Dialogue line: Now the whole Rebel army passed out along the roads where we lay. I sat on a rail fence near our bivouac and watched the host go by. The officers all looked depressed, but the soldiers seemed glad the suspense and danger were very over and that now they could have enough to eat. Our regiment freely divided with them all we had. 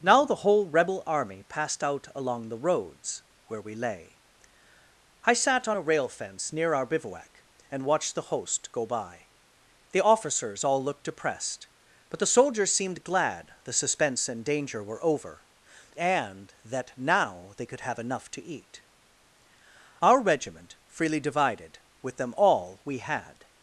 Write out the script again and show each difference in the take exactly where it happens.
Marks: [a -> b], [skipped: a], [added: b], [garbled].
Now the whole Rebel army passed out along the roads where we lay. I sat on a rail fence near our bivouac and watched the host go by. The officers all looked depressed, but the soldiers seemed glad the suspense and danger were [skipped: very] over and that now they could have enough to eat. Our regiment freely divided with them all we had.